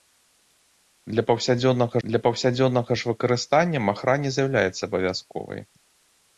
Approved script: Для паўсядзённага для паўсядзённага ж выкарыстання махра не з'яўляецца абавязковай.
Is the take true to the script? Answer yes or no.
yes